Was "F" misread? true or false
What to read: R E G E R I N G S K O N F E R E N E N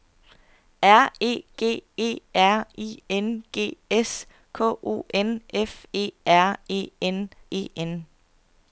false